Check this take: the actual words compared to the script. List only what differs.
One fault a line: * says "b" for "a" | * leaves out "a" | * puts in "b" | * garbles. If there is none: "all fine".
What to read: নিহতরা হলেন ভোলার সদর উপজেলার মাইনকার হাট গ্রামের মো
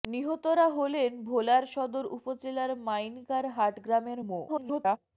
* garbles